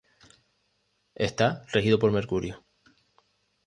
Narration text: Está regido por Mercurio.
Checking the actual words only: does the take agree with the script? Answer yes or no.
yes